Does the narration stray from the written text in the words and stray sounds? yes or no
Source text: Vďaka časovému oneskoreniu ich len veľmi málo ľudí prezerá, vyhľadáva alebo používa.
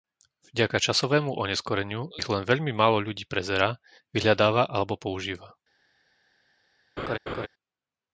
yes